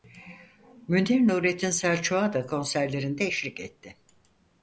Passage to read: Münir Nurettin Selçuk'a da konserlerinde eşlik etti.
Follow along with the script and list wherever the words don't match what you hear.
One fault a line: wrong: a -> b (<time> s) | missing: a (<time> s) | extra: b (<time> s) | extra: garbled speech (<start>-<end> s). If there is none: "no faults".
no faults